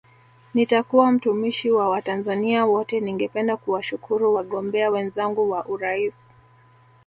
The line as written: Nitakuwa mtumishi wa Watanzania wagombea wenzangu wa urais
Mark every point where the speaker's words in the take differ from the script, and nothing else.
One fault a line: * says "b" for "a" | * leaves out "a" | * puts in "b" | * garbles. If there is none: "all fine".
* puts in "wote Ningependa kuwashukuru"